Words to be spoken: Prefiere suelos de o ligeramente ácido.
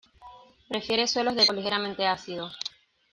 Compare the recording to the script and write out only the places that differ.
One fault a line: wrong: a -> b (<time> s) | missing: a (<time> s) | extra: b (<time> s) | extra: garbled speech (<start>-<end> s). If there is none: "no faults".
no faults